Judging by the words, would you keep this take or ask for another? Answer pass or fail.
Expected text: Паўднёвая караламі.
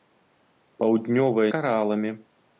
pass